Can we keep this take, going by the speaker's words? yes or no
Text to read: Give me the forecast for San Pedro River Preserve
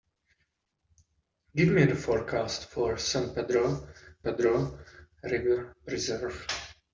no